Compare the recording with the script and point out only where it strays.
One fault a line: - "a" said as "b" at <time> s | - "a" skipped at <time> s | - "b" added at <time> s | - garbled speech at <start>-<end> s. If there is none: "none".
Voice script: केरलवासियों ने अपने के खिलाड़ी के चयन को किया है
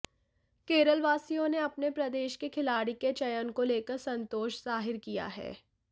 - "प्रदेश" added at 1.9 s
- "लेकर संतोष जाहिर" added at 3.6 s